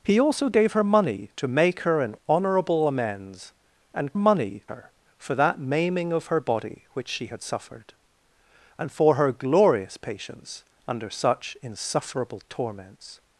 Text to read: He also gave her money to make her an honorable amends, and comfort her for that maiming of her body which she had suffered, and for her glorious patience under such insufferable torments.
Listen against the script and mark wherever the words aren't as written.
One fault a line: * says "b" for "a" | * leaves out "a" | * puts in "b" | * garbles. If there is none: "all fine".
* says "money" for "comfort"